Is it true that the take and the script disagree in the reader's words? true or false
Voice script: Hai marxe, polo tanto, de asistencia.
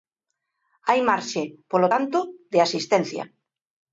false